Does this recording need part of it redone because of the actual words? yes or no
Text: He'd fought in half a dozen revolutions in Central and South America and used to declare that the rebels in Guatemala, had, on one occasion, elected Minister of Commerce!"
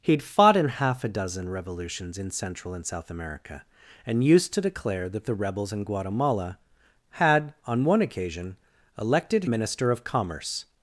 no